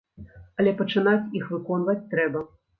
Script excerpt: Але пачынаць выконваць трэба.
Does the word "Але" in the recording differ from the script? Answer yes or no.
no